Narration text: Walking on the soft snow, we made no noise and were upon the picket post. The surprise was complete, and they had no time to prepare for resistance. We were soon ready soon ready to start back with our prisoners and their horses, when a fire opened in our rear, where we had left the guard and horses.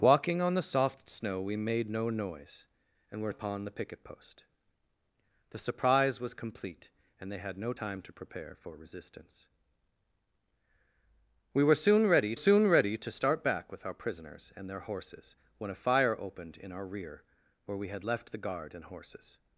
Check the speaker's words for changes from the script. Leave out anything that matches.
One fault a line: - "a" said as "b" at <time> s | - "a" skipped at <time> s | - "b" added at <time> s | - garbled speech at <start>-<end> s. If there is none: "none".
none